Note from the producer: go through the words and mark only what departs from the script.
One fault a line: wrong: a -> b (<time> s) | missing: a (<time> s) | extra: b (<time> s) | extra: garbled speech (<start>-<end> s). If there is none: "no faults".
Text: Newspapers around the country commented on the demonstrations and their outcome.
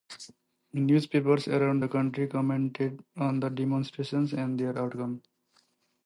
no faults